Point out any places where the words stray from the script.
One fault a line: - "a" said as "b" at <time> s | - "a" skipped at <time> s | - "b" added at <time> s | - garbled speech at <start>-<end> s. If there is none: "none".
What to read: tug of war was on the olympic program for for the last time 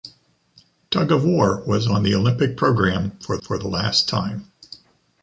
none